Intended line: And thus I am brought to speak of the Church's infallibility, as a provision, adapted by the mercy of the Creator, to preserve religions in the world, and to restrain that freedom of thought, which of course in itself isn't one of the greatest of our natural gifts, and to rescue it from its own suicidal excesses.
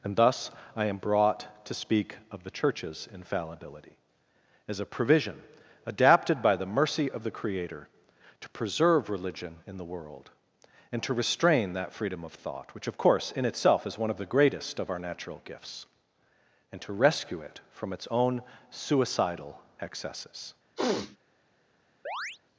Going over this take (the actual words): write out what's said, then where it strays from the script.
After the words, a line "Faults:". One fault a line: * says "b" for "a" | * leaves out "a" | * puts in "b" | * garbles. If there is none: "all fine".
And thus I am brought to speak of the Church's infallibility, as a provision, adapted by the mercy of the Creator, to preserve religion in the world, and to restrain that freedom of thought, which of course in itself is one of the greatest of our natural gifts, and to rescue it from its own suicidal excesses.
Faults:
* says "religion" for "religions"
* says "is" for "isn't"